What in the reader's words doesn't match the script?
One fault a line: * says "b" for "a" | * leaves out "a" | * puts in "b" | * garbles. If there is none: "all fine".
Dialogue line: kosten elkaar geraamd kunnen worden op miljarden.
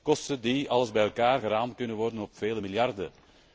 * puts in "die alles bij"
* puts in "vele"